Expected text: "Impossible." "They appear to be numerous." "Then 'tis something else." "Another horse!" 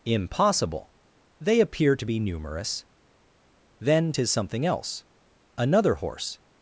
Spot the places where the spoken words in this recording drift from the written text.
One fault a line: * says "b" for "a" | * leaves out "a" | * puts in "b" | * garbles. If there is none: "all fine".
all fine